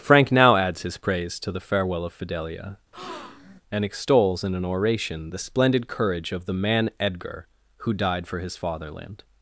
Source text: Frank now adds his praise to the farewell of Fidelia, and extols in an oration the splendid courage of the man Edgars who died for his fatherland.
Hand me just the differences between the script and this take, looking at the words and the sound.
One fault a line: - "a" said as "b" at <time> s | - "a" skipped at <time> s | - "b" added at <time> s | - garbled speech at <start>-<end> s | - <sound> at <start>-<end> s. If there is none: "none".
- breath at 2.9-3.6 s
- "Edgars" said as "Edgar" at 7.0 s